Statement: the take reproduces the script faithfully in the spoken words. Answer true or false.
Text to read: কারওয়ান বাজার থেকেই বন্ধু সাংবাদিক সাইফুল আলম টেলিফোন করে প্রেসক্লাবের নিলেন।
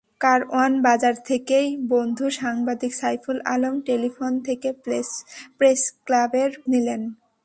true